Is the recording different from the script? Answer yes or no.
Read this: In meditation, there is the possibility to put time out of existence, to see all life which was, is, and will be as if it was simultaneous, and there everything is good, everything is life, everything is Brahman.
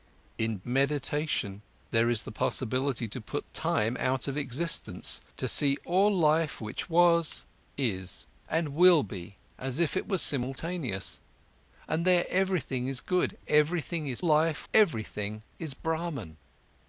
no